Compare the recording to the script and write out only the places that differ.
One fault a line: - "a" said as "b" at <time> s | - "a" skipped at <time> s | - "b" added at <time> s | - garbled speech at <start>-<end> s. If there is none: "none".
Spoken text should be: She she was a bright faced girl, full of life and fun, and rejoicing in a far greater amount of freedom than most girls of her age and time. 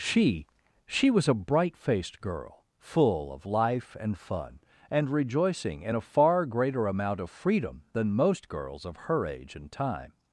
none